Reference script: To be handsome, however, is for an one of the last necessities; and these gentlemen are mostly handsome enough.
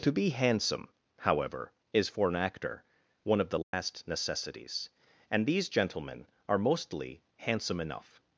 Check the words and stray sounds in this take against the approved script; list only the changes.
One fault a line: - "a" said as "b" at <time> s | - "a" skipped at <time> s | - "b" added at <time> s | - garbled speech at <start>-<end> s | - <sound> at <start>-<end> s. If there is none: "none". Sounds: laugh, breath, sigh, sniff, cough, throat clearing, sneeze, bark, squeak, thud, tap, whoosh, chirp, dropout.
- "actor" added at 2.4 s
- dropout at 3.6-3.7 s